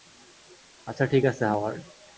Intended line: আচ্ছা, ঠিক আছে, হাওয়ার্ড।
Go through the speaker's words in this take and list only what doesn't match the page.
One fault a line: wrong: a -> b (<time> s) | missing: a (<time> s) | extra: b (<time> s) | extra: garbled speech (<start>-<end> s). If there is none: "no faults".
no faults